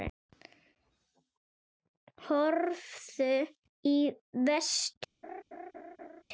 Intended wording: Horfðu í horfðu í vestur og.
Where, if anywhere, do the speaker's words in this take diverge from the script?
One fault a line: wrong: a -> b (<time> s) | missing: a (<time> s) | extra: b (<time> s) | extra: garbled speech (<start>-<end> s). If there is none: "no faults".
missing: horfðu í (4.0 s)